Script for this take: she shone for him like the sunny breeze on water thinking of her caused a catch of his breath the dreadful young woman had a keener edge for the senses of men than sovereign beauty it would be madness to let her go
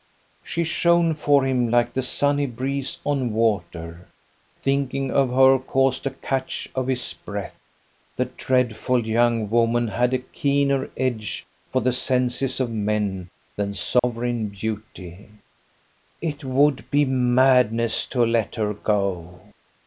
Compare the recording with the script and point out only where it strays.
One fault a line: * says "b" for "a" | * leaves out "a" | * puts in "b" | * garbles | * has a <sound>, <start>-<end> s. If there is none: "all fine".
* has a dropout, 14.0-14.0 s